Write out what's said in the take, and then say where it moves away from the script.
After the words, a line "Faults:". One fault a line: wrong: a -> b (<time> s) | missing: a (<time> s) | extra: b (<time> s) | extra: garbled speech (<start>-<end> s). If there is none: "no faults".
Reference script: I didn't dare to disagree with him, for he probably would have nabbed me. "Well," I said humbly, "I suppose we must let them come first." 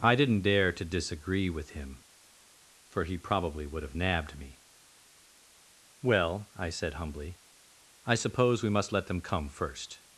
I didn't dare to disagree with him, for he probably would have nabbed me. "Well," I said humbly, "I suppose we must let them come first."
Faults:
no faults